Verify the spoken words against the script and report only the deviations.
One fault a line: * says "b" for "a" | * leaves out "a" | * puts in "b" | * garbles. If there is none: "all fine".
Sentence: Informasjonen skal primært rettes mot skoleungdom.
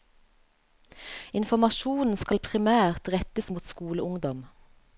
all fine